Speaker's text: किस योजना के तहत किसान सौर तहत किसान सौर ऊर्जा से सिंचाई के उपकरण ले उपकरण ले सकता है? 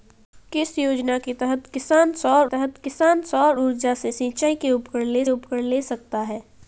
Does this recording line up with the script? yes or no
yes